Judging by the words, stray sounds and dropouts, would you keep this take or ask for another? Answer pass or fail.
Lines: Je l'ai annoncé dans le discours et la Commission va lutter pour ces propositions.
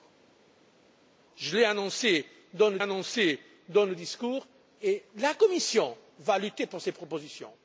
fail